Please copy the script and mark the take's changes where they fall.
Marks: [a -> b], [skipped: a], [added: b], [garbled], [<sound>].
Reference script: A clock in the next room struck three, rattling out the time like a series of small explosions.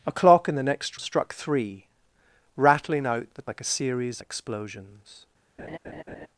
A clock in the next [skipped: room] struck three, rattling out the [skipped: time] like a series [skipped: of small] explosions. [laugh]